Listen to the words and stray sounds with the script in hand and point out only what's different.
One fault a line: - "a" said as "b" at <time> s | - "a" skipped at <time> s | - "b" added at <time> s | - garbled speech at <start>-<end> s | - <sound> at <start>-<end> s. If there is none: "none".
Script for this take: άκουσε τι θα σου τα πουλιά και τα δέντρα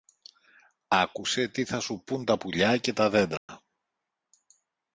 - "πουν" added at 2.0 s
- dropout at 3.4-3.5 s